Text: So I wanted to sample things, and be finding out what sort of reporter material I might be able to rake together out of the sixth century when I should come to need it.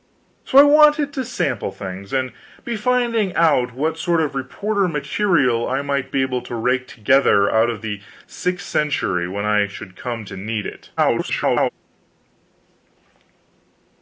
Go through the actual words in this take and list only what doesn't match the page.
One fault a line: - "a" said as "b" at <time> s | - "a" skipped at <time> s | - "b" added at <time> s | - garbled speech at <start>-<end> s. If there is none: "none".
- garbled speech at 11.0-11.7 s